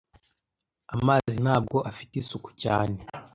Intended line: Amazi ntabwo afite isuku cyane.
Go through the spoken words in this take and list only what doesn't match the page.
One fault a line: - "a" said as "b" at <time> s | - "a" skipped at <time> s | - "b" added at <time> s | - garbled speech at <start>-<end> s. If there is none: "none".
none